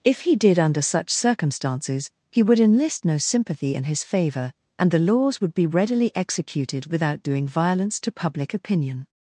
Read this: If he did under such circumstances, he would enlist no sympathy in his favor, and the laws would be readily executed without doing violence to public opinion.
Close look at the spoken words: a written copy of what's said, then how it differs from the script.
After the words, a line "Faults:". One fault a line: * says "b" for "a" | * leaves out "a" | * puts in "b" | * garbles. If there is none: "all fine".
If he did under such circumstances, he would enlist no sympathy in his favor, and the laws would be readily executed without doing violence to public opinion.
Faults:
all fine